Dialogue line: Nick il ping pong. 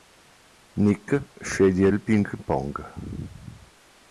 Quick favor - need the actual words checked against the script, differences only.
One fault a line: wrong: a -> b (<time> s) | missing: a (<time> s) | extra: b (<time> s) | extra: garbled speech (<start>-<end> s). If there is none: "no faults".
extra: sceglie (1.4 s)